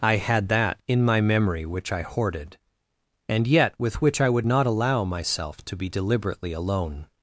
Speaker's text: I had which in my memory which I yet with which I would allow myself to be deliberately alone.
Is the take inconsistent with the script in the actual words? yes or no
yes